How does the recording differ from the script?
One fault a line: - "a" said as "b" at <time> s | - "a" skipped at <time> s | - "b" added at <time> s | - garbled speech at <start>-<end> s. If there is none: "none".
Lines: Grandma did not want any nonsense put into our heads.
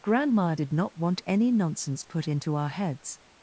none